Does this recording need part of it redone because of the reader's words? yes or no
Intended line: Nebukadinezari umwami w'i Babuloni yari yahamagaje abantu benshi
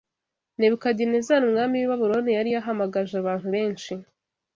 no